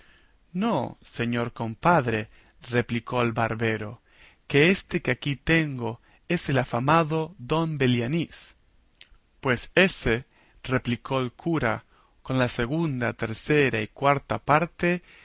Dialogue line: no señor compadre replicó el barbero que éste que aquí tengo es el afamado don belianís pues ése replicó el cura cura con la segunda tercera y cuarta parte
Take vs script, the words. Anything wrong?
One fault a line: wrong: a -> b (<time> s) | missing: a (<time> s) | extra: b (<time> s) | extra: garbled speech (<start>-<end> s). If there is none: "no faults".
missing: cura (11.8 s)